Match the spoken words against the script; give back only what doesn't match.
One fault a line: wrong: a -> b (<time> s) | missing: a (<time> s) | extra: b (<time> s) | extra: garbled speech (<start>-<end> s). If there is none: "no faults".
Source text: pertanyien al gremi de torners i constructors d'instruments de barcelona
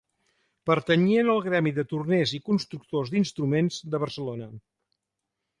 no faults